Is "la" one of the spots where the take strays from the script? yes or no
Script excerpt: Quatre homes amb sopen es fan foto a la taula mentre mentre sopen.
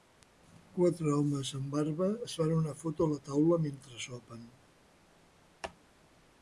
no